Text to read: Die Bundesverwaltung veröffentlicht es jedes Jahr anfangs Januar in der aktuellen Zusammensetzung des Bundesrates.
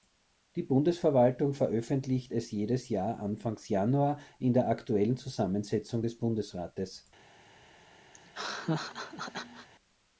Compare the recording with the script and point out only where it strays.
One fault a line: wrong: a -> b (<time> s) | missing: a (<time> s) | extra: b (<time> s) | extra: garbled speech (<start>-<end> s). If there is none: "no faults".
no faults